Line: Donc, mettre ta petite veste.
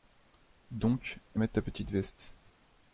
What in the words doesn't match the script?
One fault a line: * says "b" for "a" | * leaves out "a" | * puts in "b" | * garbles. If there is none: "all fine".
all fine